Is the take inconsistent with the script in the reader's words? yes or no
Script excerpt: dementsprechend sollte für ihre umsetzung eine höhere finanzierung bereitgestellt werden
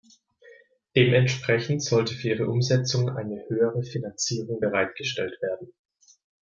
no